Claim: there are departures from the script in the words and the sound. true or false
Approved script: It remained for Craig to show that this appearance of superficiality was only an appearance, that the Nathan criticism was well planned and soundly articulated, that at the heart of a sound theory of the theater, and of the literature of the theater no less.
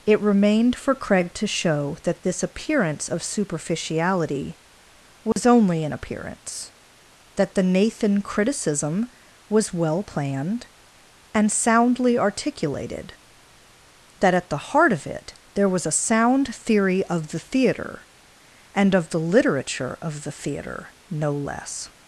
true